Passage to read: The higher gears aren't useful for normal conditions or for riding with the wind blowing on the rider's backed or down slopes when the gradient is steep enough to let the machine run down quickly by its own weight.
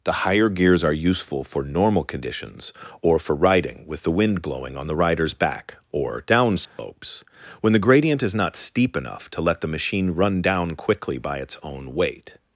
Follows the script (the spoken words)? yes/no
no